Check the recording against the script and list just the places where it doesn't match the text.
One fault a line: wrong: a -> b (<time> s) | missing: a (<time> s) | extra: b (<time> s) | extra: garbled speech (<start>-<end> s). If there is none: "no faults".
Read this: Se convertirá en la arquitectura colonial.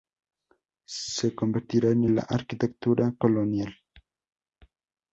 no faults